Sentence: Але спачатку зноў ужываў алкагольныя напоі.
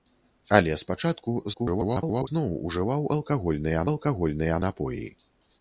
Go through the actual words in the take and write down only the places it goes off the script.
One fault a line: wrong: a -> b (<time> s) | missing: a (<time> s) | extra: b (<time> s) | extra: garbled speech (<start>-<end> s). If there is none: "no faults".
extra: garbled speech (1.5-2.3 s)
extra: алкагольныя (3.9 s)